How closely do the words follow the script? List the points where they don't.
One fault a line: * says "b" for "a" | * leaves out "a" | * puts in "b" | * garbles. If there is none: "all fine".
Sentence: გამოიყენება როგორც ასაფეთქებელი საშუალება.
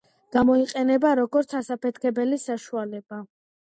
all fine